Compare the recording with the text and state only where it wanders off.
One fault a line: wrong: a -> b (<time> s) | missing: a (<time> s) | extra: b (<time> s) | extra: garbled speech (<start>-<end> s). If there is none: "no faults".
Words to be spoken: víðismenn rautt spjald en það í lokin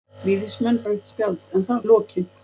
no faults